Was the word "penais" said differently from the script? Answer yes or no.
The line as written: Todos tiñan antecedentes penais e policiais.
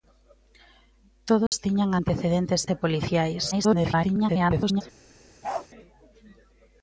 yes